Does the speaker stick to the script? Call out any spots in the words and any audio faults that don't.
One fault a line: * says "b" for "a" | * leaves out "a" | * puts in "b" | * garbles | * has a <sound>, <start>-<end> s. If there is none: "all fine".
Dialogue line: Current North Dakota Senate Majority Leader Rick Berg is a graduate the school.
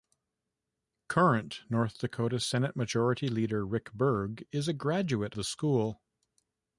all fine